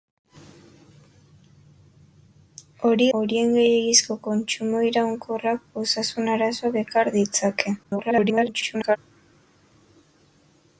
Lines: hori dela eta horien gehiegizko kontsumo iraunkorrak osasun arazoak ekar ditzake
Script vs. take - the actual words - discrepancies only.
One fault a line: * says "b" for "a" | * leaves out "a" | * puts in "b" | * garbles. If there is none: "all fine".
* leaves out "dela eta"
* garbles